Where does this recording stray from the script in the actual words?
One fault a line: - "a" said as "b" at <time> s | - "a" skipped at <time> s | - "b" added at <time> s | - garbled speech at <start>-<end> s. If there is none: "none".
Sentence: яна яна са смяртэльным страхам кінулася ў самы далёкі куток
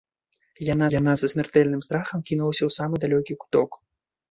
none